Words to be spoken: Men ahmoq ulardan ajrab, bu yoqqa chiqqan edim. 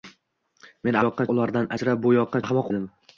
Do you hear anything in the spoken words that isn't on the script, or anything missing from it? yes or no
yes